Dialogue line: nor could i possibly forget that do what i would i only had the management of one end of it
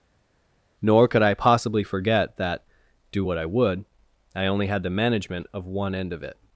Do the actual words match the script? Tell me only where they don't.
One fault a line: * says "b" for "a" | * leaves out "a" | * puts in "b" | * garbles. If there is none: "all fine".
all fine